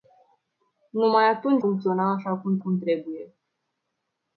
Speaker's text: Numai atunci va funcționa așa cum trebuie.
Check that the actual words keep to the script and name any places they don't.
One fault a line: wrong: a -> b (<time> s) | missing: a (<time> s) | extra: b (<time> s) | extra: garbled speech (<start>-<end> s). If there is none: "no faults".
missing: va (1.6 s)
extra: cum (2.6 s)